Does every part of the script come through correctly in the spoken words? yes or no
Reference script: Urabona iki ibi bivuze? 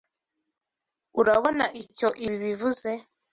no